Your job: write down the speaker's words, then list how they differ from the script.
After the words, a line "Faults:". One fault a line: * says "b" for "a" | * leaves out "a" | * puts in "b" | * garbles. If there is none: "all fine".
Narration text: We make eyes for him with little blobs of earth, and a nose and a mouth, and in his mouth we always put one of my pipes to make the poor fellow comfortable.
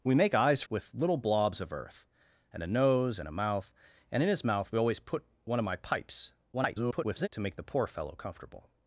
We make eyes with little blobs of earth, and a nose and a mouth, and in his mouth we always put one of my pipes [garbled] to make the poor fellow comfortable.
Faults:
* leaves out "for him"
* garbles